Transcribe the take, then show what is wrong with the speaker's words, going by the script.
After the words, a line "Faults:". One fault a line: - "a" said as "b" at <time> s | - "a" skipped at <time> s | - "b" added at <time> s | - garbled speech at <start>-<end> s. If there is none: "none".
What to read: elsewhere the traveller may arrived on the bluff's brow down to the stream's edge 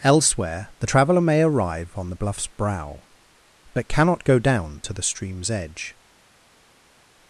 elsewhere the traveller may arrive on the bluff's brow but cannot go down to the stream's edge
Faults:
- "arrived" said as "arrive" at 1.4 s
- "but cannot go" added at 3.7 s